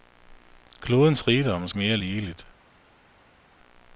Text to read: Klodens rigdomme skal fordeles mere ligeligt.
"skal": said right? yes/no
no